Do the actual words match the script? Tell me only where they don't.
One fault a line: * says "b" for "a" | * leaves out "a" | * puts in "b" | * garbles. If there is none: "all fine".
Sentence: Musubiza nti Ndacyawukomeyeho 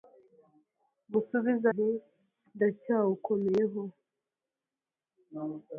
all fine